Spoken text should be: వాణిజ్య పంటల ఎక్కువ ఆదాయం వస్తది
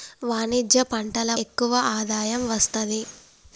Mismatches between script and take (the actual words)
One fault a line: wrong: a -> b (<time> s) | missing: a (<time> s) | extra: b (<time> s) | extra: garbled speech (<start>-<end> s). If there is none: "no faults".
no faults